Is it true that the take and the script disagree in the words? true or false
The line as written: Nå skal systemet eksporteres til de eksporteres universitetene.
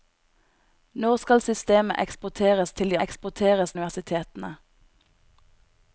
false